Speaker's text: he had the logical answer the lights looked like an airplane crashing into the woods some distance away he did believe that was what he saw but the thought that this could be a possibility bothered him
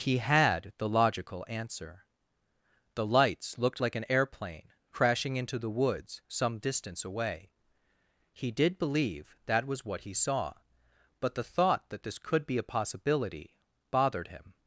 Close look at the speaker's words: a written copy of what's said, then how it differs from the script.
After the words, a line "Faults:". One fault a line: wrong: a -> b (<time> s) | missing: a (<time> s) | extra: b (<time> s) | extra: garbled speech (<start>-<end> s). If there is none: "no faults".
he had the logical answer the lights looked like an airplane crashing into the woods some distance away he did believe that was what he saw but the thought that this could be a possibility bothered him
Faults:
no faults